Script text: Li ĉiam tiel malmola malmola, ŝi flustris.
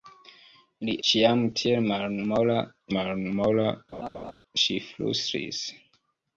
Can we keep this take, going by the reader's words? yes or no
yes